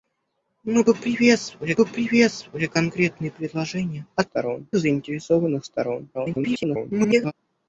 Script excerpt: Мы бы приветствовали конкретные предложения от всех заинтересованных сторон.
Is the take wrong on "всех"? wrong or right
wrong